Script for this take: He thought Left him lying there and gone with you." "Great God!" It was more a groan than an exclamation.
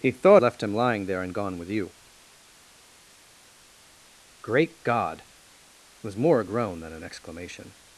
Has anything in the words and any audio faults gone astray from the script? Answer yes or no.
no